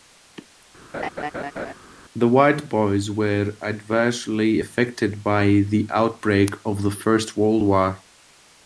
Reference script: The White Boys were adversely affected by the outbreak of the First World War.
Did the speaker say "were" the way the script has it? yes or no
yes